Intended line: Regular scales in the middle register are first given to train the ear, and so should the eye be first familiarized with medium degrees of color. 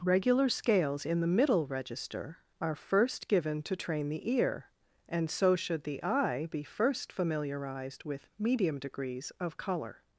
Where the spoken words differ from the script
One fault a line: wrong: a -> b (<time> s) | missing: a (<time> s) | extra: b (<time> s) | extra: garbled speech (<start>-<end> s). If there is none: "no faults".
no faults